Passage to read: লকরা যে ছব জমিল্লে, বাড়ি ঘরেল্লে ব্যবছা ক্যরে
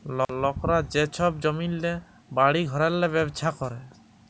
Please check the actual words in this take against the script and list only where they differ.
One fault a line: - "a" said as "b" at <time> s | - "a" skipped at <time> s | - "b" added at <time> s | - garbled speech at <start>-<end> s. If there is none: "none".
none